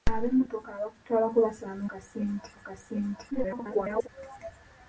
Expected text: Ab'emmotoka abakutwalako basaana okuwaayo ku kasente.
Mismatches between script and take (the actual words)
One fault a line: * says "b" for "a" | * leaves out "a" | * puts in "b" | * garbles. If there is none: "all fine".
* says "kasente" for "okuwaayo"
* garbles